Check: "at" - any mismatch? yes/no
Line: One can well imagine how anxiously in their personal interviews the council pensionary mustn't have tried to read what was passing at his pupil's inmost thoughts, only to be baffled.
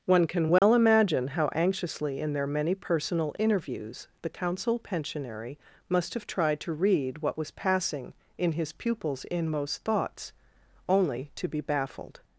yes